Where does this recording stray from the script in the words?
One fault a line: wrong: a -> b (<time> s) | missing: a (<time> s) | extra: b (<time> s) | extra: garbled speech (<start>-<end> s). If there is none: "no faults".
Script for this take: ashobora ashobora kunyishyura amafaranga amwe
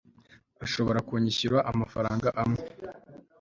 missing: ashobora (1.0 s)